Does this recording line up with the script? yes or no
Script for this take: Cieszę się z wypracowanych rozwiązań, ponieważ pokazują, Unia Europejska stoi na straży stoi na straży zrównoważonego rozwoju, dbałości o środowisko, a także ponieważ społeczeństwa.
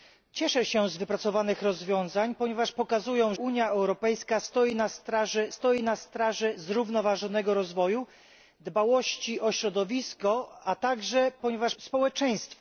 yes